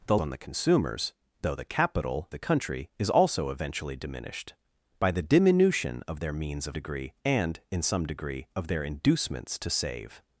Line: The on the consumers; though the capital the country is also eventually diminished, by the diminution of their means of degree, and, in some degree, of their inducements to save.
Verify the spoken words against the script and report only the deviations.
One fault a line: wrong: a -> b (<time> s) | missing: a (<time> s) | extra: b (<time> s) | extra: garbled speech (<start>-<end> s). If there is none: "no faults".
no faults